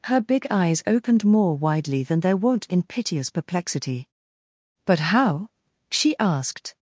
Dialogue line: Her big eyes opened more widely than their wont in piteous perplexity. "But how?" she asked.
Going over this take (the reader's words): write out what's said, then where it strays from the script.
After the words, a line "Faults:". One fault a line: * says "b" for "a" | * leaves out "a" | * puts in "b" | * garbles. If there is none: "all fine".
Her big eyes opened more widely than their wont in piteous perplexity. "But how?" she asked.
Faults:
all fine